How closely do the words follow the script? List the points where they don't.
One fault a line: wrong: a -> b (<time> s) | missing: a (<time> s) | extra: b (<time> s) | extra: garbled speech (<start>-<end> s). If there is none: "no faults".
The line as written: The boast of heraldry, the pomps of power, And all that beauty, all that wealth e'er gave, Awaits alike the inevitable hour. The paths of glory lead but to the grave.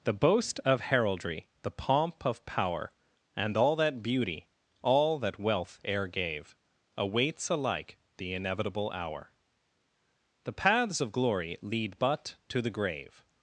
wrong: pomps -> pomp (1.7 s)